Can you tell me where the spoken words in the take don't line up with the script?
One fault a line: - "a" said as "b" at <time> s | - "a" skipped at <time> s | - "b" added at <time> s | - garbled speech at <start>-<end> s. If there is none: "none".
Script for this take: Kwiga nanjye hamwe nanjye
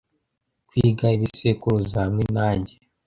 - "nanjye" said as "ibisekuruza" at 1.1 s